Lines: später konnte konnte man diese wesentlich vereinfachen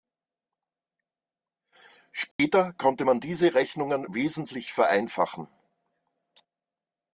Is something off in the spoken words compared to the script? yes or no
yes